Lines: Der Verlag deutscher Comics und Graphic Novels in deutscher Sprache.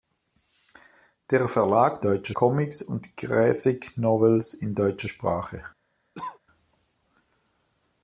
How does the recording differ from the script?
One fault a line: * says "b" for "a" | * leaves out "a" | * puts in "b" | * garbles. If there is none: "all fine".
all fine